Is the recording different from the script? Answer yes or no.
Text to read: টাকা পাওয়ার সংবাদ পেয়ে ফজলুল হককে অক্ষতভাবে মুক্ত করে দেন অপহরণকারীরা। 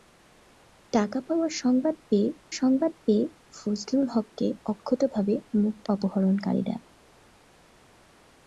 yes